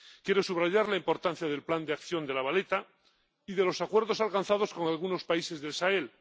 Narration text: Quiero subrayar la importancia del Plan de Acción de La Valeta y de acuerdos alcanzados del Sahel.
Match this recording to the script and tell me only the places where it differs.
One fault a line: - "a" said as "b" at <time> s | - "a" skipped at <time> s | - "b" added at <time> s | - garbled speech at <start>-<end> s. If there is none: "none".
- "los" added at 3.6 s
- "con algunos países" added at 4.7 s